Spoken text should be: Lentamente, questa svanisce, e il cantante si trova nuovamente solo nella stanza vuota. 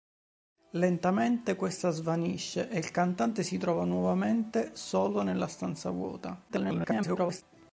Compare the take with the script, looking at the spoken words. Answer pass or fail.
fail